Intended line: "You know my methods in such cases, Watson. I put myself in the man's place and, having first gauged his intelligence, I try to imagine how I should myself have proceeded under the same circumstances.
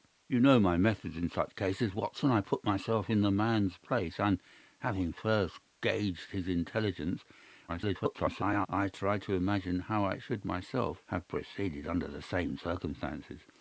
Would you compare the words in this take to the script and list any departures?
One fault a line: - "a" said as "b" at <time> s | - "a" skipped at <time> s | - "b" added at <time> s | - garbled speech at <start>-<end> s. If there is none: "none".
- garbled speech at 7.7-8.7 s